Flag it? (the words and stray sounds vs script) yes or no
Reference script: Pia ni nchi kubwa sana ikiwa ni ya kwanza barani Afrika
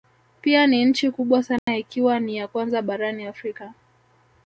yes